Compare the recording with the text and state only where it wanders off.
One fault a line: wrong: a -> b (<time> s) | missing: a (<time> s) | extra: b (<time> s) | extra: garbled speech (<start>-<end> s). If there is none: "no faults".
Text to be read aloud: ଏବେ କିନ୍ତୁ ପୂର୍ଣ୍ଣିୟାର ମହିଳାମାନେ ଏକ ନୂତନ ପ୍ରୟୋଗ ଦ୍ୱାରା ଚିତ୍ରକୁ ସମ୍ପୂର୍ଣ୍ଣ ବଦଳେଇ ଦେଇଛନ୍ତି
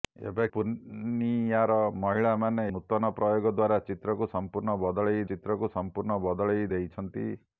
missing: କିନ୍ତୁ (0.5 s)
missing: ଏକ (2.7 s)
extra: ଚିତ୍ରକୁ ସମ୍ପୂର୍ଣ୍ଣ ବଦଳେଇ (5.3 s)